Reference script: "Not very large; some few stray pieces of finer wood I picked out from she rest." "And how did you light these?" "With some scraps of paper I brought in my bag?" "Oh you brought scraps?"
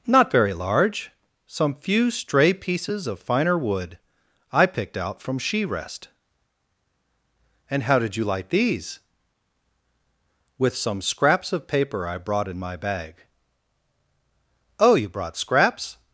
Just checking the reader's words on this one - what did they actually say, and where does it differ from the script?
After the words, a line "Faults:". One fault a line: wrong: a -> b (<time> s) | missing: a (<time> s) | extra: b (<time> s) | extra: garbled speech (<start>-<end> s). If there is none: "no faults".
"Not very large; some few stray pieces of finer wood I picked out from she rest." "And how did you light these?" "With some scraps of paper I brought in my bag?" "Oh you brought scraps?"
Faults:
no faults